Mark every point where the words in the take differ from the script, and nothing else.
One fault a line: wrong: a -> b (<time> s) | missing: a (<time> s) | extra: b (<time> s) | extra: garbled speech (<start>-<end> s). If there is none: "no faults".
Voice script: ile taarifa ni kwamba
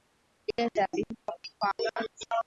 no faults